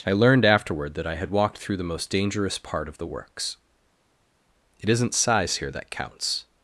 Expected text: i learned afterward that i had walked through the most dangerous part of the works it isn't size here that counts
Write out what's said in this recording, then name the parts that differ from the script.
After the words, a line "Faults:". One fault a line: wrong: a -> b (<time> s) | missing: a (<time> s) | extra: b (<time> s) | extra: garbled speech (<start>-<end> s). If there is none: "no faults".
i learned afterward that i had walked through the most dangerous part of the works it isn't size here that counts
Faults:
no faults